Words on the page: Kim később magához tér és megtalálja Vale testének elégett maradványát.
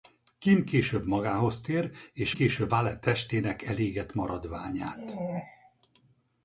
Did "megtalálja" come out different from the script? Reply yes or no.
yes